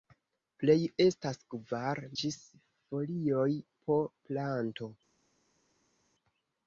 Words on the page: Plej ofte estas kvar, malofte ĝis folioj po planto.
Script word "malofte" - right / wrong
wrong